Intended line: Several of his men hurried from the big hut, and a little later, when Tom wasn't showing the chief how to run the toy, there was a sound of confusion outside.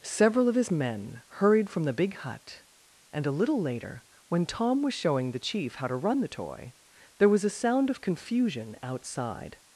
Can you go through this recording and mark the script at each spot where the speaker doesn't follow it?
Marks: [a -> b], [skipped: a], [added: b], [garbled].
Several of his men hurried from the big hut, and a little later, when Tom [wasn't -> was] showing the chief how to run the toy, there was a sound of confusion outside.